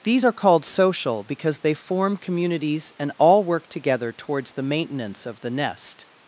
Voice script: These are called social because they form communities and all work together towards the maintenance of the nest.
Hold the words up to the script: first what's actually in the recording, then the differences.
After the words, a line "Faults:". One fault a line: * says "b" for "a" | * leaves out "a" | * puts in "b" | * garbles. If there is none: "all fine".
These are called social because they form communities and all work together towards the maintenance of the nest.
Faults:
all fine